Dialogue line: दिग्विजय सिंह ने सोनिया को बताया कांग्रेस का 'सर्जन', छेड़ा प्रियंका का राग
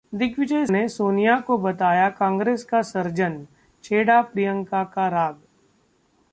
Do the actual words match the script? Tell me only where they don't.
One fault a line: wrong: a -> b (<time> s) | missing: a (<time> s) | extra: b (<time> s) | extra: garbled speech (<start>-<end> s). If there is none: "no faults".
missing: सिंह (0.7 s)